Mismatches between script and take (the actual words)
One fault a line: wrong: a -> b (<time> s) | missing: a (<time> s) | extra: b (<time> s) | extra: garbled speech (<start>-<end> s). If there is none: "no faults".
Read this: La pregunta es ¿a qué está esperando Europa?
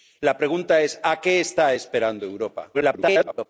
extra: garbled speech (2.7-3.5 s)